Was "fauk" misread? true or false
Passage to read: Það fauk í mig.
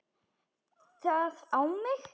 true